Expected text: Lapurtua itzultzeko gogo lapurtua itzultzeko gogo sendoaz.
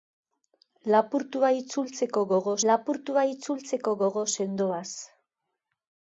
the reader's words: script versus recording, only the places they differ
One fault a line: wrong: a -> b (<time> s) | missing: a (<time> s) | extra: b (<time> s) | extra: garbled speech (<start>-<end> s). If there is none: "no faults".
no faults